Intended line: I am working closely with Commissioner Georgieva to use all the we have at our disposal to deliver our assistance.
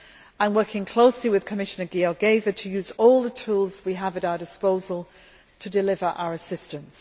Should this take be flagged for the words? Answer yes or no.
yes